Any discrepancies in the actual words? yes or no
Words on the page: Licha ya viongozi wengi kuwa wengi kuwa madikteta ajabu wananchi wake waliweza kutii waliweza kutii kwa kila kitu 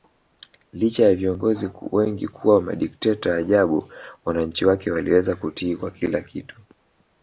yes